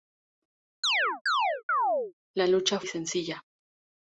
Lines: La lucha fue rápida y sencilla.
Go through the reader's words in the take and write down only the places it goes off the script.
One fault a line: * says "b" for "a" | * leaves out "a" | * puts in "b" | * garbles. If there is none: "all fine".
* leaves out "fue rápida"